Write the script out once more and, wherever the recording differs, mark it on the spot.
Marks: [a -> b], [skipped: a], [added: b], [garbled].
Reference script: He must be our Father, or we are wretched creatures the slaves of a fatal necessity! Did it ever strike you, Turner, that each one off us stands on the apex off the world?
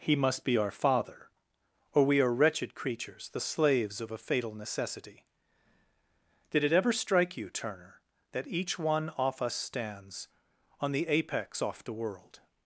He must be our Father, or we are wretched creatures the slaves of a fatal necessity! Did it ever strike you, Turner, that each one off us stands on the apex off the world?